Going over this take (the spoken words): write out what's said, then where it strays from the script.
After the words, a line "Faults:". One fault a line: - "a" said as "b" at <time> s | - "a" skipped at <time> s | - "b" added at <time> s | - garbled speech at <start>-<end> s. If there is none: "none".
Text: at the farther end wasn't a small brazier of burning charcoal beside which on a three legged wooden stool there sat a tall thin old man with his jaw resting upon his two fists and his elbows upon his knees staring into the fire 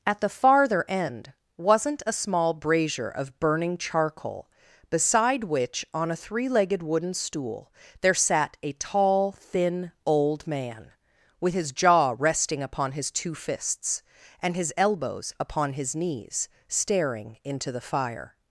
at the farther end wasn't a small brazier of burning charcoal beside which on a three legged wooden stool there sat a tall thin old man with his jaw resting upon his two fists and his elbows upon his knees staring into the fire
Faults:
none